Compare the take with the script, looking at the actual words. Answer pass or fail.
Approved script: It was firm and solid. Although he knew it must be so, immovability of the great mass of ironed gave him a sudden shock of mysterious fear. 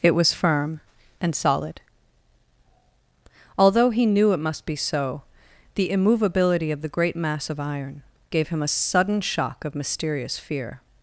fail